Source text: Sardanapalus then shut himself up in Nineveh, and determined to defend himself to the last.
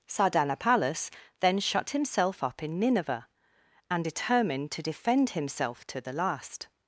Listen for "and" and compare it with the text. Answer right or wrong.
right